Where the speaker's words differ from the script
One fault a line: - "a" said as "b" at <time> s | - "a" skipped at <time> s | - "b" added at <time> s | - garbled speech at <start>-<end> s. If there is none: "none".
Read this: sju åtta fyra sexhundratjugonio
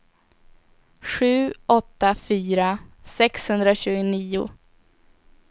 none